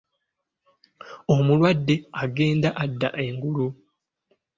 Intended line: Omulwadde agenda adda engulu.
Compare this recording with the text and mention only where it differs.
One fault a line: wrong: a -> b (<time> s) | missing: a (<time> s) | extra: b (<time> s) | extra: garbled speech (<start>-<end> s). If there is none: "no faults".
no faults